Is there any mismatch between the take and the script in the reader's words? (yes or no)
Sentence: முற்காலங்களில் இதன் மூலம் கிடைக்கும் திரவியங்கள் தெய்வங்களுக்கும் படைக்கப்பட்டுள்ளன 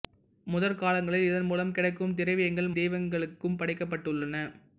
no